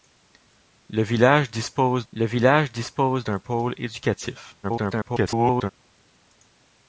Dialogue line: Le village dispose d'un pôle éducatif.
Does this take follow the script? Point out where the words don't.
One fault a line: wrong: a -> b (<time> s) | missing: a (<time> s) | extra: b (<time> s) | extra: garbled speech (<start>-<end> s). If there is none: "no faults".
extra: le village dispose (2.1 s)
extra: garbled speech (4.6-5.7 s)